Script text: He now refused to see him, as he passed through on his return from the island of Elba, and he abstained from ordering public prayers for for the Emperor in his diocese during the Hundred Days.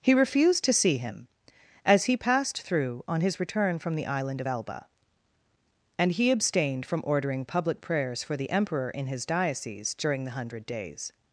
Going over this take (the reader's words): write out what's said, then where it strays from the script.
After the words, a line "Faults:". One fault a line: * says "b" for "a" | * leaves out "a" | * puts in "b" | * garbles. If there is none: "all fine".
He refused to see him, as he passed through on his return from the island of Elba, and he abstained from ordering public prayers for the Emperor in his diocese during the Hundred Days.
Faults:
* leaves out "now"
* leaves out "for"